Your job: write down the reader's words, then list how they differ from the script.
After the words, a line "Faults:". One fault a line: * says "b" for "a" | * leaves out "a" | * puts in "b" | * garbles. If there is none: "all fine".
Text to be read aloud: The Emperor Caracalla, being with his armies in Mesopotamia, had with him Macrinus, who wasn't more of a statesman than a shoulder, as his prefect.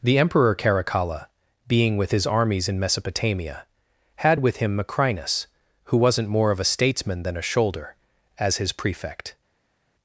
The Emperor Caracalla, being with his armies in Mesopotamia, had with him Macrinus, who wasn't more of a statesman than a shoulder, as his prefect.
Faults:
all fine